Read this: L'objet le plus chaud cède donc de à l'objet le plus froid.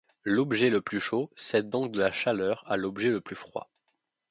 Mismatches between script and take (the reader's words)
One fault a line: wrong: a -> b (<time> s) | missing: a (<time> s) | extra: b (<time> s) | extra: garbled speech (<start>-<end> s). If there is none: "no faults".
extra: la chaleur (2.0 s)